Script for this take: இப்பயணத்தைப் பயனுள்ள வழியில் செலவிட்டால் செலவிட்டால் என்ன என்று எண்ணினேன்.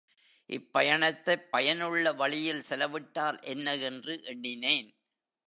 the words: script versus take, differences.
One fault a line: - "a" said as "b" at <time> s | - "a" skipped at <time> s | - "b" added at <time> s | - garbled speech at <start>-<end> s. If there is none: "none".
- "செலவிட்டால்" skipped at 3.4 s